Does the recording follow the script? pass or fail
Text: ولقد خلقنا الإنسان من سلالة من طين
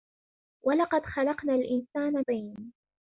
fail